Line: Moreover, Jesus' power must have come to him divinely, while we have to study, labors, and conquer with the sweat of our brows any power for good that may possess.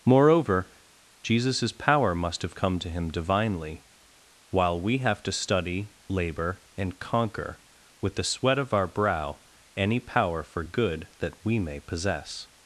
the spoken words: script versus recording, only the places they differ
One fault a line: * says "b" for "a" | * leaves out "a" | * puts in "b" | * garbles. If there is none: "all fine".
* says "labor" for "labors"
* says "brow" for "brows"
* puts in "we"